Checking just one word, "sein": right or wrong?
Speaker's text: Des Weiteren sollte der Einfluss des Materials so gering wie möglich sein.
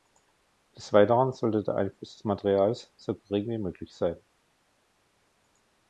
right